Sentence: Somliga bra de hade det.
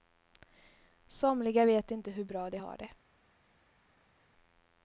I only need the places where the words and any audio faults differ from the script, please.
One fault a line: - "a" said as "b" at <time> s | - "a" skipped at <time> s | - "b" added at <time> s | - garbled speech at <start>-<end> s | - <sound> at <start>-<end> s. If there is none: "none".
- "vet inte hur" added at 1.6 s
- "hade" said as "har" at 2.6 s